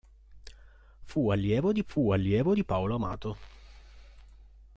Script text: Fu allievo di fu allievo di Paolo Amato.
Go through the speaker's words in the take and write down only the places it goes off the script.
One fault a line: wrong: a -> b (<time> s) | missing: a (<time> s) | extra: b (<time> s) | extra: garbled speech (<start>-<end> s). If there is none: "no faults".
no faults